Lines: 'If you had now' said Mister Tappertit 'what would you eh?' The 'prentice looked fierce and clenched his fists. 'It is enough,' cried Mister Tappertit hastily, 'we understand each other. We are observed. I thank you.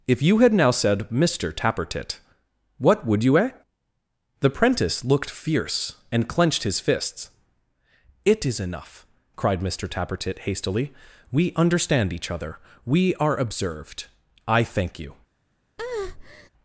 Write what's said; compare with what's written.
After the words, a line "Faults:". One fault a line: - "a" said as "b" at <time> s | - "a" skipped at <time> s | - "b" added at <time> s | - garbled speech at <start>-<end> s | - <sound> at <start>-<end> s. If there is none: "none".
'If you had now' said Mister Tappertit 'what would you eh?' The 'prentice looked fierce and clenched his fists. 'It is enough,' cried Mister Tappertit hastily, 'we understand each other. We are observed. I thank you.
Faults:
- breath at 15.8-16.5 s